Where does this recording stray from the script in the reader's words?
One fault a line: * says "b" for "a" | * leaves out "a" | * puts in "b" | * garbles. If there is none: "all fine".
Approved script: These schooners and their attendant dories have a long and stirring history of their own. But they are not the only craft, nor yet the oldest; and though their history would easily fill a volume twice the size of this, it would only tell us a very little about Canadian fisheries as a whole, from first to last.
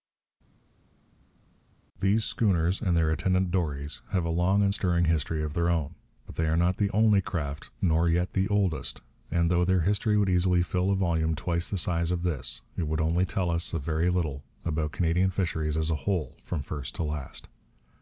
all fine